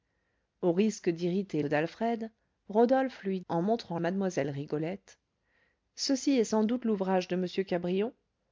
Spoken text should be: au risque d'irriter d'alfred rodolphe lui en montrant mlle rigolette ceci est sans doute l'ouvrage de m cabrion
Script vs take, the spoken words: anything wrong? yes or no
no